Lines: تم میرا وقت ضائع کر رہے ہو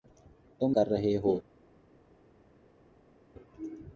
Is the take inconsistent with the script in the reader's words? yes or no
yes